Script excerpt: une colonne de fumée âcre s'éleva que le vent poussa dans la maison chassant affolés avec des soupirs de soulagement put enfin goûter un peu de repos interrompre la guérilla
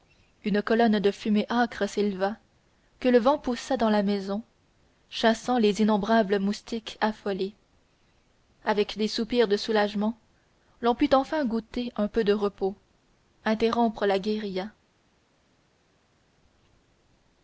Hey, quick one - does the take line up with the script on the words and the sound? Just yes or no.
no